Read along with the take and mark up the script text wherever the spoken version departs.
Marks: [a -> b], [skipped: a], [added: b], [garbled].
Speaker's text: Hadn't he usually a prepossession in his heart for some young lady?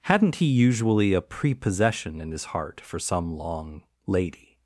Hadn't he usually a prepossession in his heart for some [young -> long] lady?